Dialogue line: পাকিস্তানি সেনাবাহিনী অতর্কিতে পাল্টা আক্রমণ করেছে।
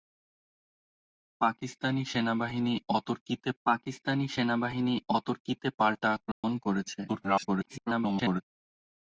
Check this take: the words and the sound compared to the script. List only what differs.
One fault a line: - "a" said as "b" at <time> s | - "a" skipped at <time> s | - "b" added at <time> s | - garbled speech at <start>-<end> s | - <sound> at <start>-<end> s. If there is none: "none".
- "পাকিস্তানি সেনাবাহিনী অতর্কিতে" added at 3.7 s
- dropout at 6.3-6.4 s
- garbled speech at 7.1-8.4 s